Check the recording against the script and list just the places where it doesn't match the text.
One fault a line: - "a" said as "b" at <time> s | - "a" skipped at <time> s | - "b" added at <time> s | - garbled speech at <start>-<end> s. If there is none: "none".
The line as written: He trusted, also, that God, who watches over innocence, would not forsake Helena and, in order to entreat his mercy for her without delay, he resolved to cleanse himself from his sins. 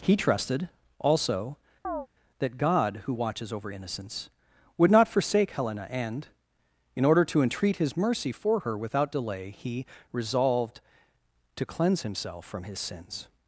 none